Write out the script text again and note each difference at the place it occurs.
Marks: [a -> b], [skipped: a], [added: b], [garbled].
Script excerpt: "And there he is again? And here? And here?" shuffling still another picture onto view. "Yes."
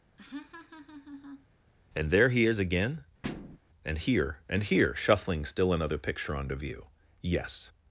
"And there he is again? And here? And here?" shuffling still another picture onto view. "Yes."